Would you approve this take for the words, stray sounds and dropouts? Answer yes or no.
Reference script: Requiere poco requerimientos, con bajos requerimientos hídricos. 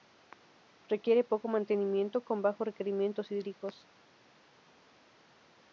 no